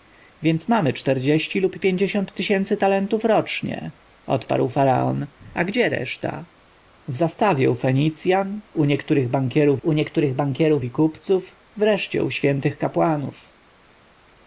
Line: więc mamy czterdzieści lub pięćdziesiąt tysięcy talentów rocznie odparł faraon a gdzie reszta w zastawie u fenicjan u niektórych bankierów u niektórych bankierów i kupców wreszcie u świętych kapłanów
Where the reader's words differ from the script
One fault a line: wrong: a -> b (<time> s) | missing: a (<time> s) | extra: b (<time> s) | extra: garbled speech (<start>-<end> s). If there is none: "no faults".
no faults